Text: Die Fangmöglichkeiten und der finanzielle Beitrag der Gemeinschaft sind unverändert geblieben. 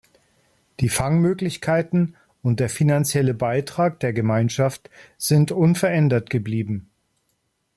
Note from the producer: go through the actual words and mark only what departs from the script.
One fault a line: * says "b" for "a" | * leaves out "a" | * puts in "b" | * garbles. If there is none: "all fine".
all fine